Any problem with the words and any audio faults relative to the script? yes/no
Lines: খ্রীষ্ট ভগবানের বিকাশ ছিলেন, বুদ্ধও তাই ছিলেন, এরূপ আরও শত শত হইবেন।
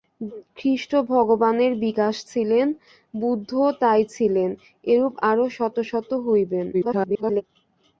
yes